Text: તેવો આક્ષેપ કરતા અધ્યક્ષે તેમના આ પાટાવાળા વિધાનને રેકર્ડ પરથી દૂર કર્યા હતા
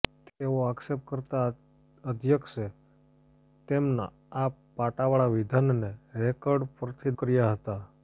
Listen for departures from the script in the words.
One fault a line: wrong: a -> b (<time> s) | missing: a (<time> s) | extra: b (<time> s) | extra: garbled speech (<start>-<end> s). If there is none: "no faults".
missing: દૂર (7.2 s)